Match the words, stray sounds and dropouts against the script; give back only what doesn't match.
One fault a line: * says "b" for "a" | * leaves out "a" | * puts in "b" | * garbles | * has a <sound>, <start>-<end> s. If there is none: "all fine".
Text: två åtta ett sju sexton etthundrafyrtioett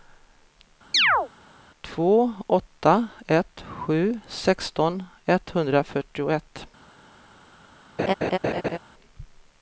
* has a chirp, 0.9-1.3 s
* has a laugh, 8.0-8.8 s